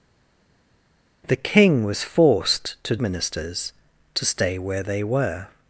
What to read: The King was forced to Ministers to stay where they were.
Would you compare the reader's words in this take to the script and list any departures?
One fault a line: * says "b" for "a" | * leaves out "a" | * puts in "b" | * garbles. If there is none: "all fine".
all fine